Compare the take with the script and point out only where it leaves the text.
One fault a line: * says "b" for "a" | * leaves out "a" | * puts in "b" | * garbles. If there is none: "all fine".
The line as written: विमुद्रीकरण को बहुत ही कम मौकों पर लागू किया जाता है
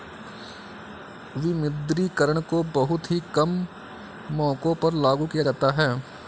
all fine